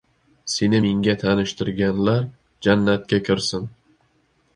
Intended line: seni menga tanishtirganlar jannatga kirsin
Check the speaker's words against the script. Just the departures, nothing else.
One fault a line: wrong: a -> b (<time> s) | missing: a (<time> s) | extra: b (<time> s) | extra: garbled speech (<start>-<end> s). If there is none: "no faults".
no faults